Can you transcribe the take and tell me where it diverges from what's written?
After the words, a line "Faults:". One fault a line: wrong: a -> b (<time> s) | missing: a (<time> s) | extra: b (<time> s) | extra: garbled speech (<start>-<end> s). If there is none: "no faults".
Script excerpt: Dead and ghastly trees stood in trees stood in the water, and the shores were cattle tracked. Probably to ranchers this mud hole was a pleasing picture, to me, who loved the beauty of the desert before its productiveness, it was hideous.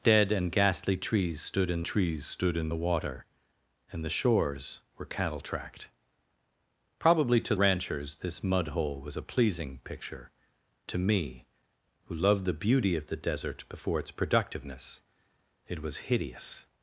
Dead and ghastly trees stood in trees stood in the water, and the shores were cattle tracked. Probably to ranchers this mud hole was a pleasing picture, to me, who loved the beauty of the desert before its productiveness, it was hideous.
Faults:
no faults